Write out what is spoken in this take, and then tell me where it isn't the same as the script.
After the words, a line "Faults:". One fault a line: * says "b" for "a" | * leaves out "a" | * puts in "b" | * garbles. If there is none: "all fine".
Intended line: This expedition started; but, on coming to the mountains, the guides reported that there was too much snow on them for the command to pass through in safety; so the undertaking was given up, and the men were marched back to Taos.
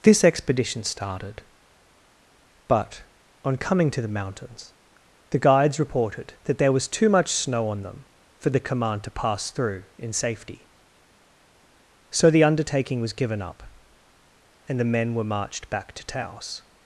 This expedition started; but, on coming to the mountains, the guides reported that there was too much snow on them for the command to pass through in safety; so the undertaking was given up, and the men were marched back to Taos.
Faults:
all fine